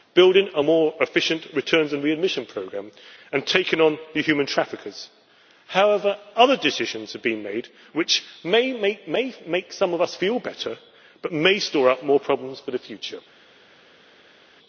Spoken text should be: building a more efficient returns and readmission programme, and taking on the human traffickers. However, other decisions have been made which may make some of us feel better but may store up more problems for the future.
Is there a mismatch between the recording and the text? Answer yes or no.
no